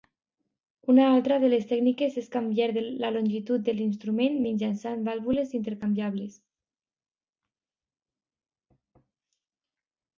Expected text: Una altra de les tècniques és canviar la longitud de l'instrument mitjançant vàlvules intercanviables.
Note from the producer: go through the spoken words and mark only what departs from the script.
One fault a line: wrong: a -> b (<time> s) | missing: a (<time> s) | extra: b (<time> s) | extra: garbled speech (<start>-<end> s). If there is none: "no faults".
no faults